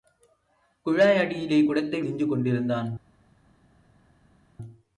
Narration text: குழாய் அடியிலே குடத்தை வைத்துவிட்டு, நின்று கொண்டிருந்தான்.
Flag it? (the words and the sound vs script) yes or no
yes